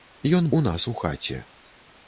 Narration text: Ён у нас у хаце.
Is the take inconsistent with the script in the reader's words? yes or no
no